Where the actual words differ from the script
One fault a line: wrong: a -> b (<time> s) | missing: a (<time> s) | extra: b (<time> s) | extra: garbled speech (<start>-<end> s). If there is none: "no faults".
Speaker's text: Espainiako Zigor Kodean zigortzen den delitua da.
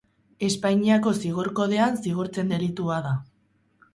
missing: den (2.5 s)